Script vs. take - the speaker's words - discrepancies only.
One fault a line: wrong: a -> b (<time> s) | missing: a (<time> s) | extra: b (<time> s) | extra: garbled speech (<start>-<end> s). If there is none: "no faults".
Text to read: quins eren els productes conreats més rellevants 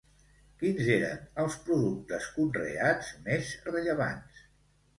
no faults